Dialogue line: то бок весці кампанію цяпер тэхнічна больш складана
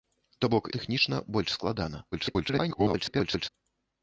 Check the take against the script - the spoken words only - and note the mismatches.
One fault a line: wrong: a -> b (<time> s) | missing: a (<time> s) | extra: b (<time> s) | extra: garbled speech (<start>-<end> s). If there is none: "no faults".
missing: весці кампанію цяпер (0.7 s)
extra: garbled speech (2.1-3.5 s)